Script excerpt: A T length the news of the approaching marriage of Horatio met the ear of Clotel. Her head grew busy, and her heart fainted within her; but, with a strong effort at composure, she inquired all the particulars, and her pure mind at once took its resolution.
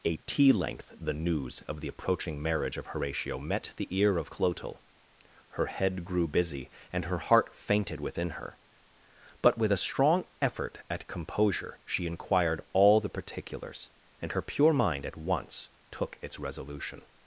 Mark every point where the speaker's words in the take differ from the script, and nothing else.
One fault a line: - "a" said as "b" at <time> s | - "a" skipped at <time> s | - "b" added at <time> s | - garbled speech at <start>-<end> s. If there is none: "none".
none